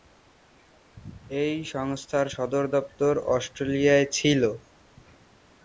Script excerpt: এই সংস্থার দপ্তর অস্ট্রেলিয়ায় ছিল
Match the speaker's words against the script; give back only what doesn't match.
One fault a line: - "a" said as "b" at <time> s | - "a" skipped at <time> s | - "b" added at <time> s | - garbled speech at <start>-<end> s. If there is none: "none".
- "সদর" added at 2.3 s